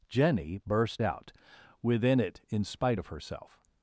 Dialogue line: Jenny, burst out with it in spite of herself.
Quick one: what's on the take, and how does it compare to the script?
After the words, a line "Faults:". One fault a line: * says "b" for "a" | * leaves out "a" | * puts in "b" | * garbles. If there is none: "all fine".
Jenny, burst out within it in spite of herself.
Faults:
* says "within" for "with"